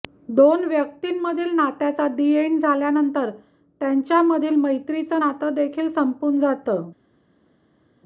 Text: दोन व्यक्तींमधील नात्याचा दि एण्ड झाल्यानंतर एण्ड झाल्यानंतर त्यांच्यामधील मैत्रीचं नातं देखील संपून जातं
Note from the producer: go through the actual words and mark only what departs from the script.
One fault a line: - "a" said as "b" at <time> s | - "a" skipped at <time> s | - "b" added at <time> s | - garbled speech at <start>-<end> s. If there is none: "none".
- "एण्ड झाल्यानंतर" skipped at 3.3 s